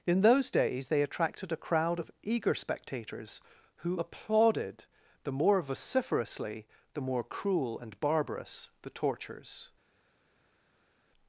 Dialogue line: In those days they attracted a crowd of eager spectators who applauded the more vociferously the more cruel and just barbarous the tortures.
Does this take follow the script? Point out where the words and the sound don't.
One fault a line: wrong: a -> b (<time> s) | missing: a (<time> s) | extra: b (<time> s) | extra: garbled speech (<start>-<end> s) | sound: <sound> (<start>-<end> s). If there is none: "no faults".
missing: just (8.0 s)